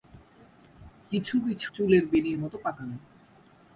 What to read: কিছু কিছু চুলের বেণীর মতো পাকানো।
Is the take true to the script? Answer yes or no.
yes